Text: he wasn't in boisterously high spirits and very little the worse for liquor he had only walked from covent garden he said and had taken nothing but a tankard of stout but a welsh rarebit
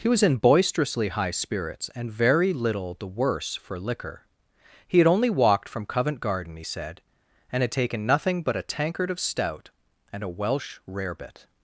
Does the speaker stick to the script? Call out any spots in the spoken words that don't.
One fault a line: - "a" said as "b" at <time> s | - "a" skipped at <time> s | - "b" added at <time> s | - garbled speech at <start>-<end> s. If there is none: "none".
- "wasn't" said as "was" at 0.1 s
- "but" said as "and" at 10.1 s